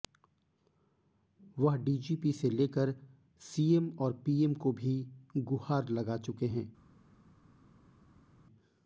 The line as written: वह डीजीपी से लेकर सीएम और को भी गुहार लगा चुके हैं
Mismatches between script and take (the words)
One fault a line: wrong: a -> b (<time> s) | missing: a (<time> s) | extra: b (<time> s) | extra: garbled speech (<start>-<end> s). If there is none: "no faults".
extra: पीएम (4.2 s)